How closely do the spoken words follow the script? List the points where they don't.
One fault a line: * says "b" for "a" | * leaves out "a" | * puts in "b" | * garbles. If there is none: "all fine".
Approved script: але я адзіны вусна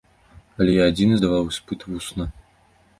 * puts in "здаваў іспыт"